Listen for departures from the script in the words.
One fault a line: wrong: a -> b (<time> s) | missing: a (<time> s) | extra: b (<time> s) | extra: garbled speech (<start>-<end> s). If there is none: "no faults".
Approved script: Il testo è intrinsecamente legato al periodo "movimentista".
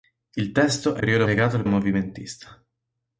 wrong: intrinsecamente -> periodo (1.0 s)
missing: periodo (1.7 s)